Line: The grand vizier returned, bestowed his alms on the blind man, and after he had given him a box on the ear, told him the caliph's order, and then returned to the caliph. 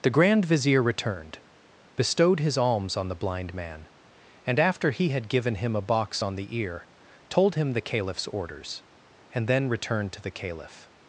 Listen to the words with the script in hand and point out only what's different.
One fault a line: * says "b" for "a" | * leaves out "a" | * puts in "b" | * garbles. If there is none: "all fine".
* says "orders" for "order"